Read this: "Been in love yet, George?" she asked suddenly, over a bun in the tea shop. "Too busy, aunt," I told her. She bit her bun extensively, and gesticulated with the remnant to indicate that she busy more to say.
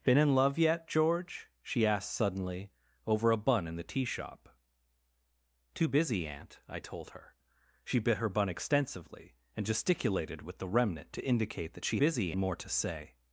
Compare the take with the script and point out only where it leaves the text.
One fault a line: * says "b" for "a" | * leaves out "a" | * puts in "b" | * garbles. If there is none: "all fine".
all fine